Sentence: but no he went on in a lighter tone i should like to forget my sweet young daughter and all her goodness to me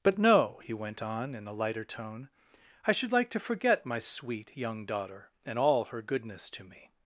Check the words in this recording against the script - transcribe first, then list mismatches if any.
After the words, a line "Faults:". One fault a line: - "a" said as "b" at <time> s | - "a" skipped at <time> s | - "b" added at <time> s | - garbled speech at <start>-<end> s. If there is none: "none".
but no he went on in a lighter tone i should like to forget my sweet young daughter and all her goodness to me
Faults:
none